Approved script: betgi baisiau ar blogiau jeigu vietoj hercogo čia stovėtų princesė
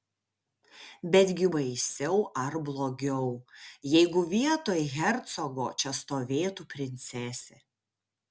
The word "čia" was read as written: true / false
true